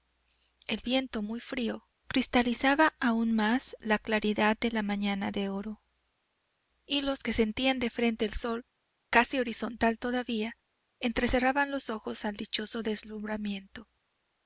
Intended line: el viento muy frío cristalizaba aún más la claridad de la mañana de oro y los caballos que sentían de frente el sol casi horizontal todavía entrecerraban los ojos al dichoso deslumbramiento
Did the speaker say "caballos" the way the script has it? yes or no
no